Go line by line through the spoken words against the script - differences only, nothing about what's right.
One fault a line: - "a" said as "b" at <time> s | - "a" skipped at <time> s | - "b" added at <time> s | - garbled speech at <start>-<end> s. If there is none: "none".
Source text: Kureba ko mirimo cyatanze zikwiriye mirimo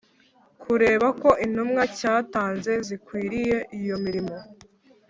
- "mirimo" said as "intumwa" at 1.4 s
- "iyo" added at 3.8 s